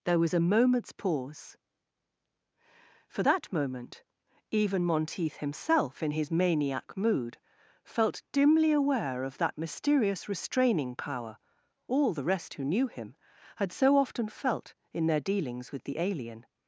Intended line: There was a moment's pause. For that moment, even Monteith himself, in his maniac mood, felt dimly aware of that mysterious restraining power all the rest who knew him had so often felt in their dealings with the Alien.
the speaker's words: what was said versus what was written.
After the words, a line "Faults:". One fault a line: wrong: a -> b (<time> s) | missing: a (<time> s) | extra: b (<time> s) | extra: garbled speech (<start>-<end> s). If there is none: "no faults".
There was a moment's pause. For that moment, even Monteith himself, in his maniac mood, felt dimly aware of that mysterious restraining power all the rest who knew him had so often felt in their dealings with the Alien.
Faults:
no faults